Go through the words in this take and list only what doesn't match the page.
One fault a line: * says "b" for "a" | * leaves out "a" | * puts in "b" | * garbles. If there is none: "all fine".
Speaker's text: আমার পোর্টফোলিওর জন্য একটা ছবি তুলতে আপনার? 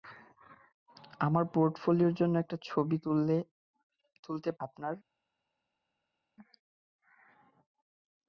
all fine